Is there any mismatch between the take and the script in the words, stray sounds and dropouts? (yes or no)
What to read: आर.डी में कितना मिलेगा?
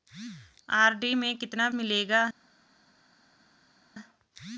no